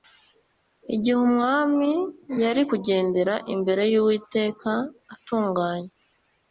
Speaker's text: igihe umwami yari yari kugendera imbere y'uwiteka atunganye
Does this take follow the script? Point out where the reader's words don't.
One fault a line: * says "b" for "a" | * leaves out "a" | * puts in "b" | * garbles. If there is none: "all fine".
* leaves out "yari"